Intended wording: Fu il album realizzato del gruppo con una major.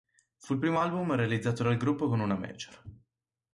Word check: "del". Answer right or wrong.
wrong